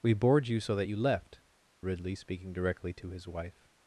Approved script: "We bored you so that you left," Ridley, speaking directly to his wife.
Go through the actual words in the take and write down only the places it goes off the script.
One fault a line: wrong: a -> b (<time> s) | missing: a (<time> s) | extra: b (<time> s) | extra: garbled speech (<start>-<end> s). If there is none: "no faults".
no faults